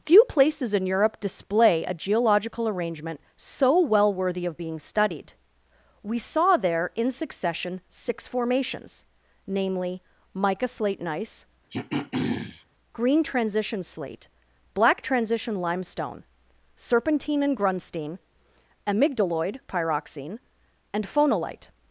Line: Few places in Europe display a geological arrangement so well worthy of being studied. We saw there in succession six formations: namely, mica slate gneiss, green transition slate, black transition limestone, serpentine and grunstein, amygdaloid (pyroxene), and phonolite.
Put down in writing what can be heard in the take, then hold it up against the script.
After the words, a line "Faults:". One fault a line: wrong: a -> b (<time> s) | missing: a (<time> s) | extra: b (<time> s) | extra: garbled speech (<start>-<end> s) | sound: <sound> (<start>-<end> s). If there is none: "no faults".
Few places in Europe display a geological arrangement so well worthy of being studied. We saw there in succession six formations: namely, mica slate gneiss, green transition slate, black transition limestone, serpentine and grunstein, amygdaloid (pyroxene), and phonolite.
Faults:
sound: throat clearing (11.7-12.6 s)